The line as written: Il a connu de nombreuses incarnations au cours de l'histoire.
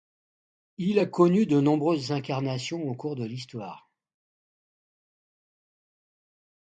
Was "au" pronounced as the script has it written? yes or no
yes